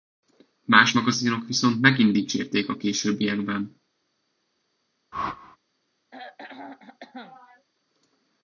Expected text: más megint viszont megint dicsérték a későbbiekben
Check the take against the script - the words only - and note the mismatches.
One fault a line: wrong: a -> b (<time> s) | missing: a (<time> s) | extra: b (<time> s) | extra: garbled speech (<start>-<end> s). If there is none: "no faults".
wrong: megint -> magazinok (0.9 s)